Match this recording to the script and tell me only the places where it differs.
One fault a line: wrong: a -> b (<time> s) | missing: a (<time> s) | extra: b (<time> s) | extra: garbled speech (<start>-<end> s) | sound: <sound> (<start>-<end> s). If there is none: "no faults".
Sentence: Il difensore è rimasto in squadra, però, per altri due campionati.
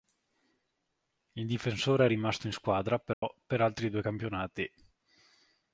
sound: dropout (3.1-3.2 s)